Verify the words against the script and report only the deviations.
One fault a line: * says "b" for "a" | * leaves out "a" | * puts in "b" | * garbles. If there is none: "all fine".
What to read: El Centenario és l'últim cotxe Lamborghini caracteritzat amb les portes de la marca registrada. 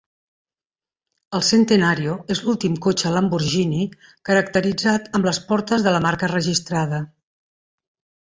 all fine